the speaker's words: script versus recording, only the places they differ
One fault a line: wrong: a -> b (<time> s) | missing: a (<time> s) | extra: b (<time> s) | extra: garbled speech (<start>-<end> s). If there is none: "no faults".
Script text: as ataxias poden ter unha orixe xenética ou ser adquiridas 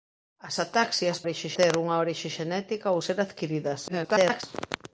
wrong: poden -> orixe (1.2 s)
extra: garbled speech (3.9-4.4 s)